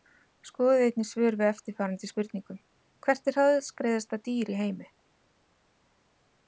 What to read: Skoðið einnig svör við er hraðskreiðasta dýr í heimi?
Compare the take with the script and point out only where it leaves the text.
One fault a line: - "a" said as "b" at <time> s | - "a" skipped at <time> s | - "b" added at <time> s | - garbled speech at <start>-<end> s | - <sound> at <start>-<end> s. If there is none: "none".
- "eftirfarandi spurningum Hvert" added at 1.5 s